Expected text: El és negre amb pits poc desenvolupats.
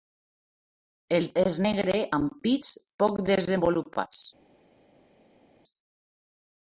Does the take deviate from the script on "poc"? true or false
false